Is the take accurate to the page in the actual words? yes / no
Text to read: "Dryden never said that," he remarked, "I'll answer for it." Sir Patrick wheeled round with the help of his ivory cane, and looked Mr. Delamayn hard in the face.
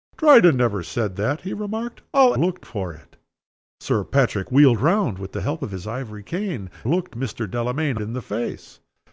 no